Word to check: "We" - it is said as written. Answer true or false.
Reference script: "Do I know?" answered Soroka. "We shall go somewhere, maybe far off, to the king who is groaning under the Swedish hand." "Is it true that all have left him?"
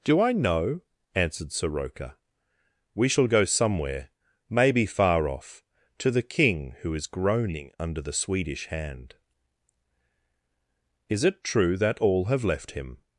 true